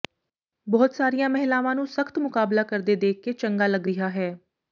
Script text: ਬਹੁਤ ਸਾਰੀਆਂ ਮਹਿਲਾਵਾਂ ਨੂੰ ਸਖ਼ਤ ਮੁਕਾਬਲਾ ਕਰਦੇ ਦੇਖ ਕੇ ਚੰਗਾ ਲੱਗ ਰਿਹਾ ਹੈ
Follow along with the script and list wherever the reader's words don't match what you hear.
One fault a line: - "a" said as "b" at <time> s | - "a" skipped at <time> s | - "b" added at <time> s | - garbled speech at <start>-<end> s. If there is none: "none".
none